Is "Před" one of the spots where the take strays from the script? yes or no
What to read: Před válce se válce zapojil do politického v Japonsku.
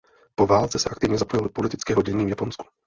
yes